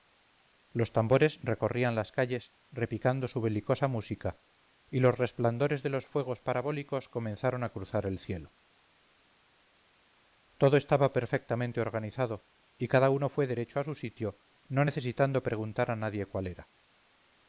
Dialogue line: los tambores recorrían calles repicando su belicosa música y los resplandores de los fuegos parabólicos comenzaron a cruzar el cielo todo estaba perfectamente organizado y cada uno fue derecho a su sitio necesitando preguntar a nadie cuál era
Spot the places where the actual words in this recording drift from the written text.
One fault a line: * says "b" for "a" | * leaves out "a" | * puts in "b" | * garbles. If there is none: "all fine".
* puts in "las"
* puts in "no"